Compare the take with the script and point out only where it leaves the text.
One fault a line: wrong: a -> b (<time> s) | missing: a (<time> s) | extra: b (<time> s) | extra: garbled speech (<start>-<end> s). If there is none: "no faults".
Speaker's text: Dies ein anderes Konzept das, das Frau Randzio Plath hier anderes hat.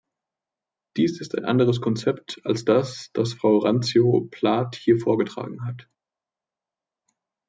extra: ist (1.2 s)
extra: als (2.4 s)
wrong: anderes -> vorgetragen (5.0 s)